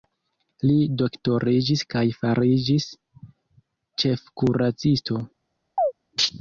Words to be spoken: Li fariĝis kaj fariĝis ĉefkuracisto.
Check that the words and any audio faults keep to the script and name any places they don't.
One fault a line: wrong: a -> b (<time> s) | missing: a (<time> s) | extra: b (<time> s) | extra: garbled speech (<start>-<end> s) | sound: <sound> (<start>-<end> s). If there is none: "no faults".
wrong: fariĝis -> doktoriĝis (1.0 s)
sound: chirp (5.8-5.9 s)